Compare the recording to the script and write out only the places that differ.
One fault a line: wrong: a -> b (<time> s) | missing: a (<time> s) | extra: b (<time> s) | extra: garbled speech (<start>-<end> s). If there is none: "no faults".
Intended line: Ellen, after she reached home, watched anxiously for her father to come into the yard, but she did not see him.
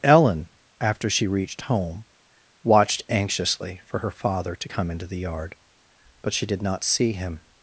no faults